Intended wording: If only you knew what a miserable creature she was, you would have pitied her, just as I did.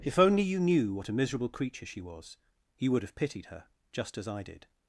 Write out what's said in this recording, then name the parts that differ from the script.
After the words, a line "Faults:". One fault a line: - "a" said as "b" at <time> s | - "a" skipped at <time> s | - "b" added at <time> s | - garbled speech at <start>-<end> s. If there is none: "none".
If only you knew what a miserable creature she was, you would have pitied her, just as I did.
Faults:
none